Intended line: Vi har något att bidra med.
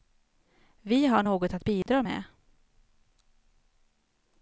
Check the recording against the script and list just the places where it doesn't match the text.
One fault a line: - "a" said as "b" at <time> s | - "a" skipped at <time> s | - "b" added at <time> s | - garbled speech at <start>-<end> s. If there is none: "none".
none